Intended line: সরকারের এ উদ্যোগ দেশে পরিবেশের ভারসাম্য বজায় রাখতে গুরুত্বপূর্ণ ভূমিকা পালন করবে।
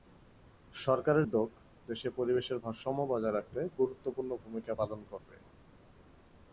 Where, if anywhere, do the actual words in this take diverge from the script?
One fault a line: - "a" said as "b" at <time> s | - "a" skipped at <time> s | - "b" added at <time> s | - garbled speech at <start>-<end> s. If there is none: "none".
- "এ" skipped at 1.2 s